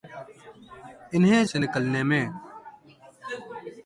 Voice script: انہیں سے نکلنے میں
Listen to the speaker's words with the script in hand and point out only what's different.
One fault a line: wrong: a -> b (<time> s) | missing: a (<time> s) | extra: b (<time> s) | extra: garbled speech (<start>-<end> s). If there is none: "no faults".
no faults